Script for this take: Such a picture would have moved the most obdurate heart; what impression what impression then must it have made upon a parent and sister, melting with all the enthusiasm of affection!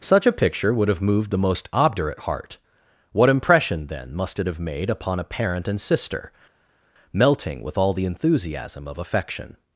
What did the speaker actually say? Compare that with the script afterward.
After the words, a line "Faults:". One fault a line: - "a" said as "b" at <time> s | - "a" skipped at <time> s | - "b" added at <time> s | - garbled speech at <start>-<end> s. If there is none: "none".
Such a picture would have moved the most obdurate heart; what impression then must it have made upon a parent and sister, melting with all the enthusiasm of affection!
Faults:
- "what impression" skipped at 3.9 s